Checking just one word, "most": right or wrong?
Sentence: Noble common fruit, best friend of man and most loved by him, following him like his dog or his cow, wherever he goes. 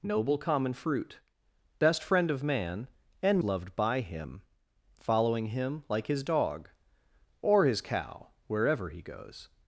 wrong